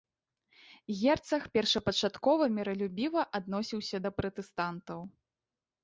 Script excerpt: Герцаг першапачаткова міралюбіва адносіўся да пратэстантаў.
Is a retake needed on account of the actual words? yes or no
no